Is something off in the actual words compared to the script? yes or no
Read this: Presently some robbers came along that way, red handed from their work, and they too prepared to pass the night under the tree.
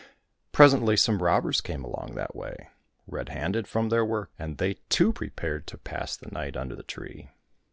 no